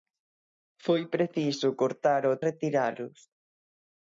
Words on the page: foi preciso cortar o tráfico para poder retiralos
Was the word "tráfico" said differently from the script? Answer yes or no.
yes